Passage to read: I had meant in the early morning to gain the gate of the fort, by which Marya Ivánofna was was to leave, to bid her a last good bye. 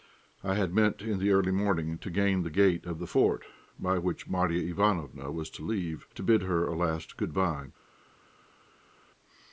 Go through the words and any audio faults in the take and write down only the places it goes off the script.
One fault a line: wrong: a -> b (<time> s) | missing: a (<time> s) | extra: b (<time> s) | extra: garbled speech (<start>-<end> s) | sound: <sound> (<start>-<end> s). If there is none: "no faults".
missing: was (5.5 s)